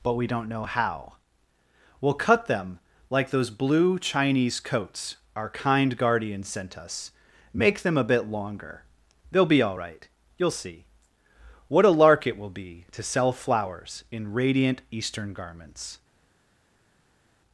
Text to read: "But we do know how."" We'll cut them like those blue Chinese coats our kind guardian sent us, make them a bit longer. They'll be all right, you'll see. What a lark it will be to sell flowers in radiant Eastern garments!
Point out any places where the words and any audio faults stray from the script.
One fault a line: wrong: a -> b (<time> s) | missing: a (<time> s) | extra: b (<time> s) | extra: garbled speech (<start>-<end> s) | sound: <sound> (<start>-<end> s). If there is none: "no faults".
wrong: do -> don't (0.3 s)